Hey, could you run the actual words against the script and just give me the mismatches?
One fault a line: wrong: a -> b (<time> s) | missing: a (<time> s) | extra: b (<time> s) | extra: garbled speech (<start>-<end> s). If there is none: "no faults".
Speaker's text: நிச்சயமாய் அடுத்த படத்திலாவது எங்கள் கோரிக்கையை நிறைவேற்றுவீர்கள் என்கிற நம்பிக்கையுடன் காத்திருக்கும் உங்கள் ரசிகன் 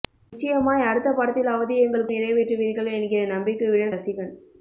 missing: கோரிக்கையை (2.1 s)
missing: காத்திருக்கும் உங்கள் (4.0 s)